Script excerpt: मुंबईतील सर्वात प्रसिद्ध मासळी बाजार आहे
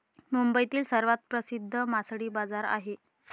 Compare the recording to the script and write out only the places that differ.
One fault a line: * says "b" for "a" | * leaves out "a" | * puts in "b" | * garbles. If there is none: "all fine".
all fine